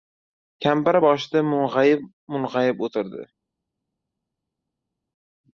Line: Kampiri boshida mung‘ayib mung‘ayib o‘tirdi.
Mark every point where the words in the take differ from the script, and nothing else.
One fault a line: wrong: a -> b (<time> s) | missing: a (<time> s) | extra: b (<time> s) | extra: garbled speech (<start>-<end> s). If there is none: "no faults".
no faults